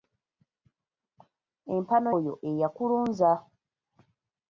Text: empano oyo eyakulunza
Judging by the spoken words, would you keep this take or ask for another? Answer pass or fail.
pass